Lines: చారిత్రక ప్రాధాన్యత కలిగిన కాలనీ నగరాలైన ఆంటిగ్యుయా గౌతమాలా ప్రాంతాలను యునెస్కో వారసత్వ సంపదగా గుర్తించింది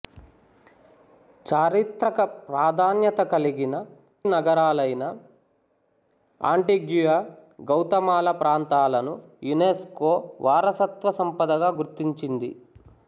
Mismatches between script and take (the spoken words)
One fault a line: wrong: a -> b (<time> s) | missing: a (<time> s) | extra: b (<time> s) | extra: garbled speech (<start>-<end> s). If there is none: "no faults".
missing: కాలనీ (3.8 s)